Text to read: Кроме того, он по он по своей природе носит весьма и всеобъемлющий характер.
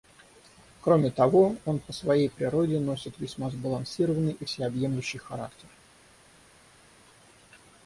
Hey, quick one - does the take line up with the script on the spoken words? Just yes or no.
no